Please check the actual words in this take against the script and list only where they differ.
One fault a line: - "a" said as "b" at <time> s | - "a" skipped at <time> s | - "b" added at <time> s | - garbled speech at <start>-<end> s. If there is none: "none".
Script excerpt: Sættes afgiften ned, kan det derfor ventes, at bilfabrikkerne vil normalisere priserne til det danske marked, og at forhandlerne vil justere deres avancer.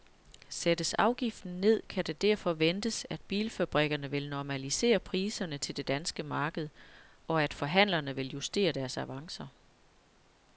none